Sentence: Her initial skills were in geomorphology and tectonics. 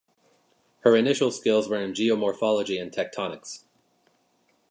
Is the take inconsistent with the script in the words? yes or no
no